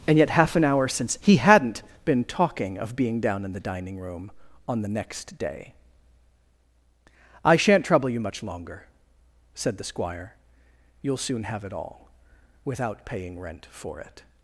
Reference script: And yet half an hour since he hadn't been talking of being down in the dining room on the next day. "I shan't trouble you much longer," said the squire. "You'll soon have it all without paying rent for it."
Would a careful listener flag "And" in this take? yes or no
no